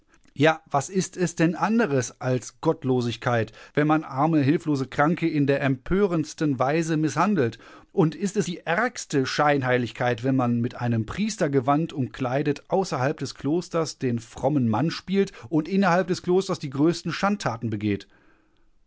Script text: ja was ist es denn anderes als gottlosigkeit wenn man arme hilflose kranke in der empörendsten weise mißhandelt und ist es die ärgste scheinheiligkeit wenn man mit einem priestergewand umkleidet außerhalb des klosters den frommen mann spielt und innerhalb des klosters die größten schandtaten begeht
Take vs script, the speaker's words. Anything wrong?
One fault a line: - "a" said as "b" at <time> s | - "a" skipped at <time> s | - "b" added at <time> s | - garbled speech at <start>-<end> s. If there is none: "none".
none